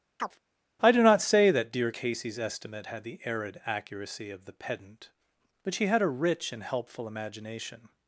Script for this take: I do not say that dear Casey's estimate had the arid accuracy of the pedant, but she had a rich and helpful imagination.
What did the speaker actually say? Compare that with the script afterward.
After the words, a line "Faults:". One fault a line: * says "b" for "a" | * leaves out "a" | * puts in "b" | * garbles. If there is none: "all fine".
I do not say that dear Casey's estimate had the arid accuracy of the pedant, but she had a rich and helpful imagination.
Faults:
all fine